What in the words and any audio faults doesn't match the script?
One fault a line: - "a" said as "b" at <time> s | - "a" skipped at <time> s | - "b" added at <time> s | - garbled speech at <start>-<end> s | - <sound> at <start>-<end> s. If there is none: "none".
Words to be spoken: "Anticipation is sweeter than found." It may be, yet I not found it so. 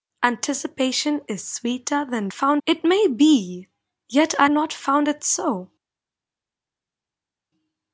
none